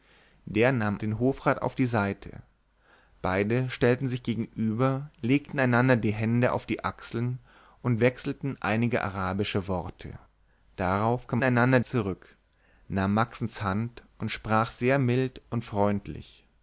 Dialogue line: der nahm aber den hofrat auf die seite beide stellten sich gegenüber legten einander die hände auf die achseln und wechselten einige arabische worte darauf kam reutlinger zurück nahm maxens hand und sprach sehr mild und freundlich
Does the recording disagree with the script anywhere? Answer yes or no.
yes